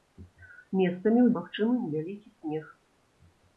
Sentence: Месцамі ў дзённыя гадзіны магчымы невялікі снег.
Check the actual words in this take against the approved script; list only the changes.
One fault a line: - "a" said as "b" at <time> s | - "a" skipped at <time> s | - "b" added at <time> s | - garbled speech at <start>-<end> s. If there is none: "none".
- "дзённыя гадзіны" skipped at 1.3 s